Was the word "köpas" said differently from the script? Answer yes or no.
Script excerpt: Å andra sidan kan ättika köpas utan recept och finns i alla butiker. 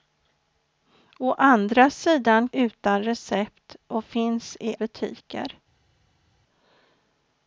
yes